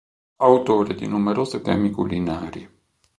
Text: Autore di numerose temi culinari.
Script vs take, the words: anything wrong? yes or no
no